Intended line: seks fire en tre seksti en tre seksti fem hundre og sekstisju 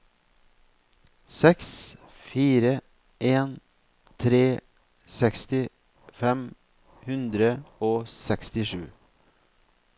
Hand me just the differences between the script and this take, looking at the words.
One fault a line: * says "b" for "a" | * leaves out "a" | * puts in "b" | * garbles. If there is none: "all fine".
* leaves out "en tre seksti"